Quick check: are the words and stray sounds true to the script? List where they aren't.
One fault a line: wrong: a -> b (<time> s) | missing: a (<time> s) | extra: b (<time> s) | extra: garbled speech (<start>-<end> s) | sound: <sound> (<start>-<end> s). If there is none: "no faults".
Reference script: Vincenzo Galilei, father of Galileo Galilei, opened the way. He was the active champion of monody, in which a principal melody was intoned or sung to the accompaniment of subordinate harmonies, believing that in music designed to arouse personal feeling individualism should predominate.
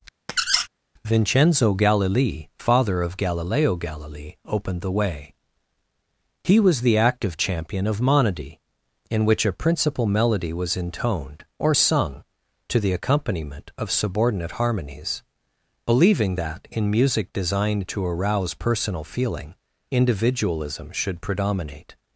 sound: squeak (0.3-0.7 s)